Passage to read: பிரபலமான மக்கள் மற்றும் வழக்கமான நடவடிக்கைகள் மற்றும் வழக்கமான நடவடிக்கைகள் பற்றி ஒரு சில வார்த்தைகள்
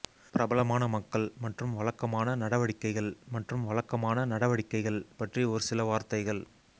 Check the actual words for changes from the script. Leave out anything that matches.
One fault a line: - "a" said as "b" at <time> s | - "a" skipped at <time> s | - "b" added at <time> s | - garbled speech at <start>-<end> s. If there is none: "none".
none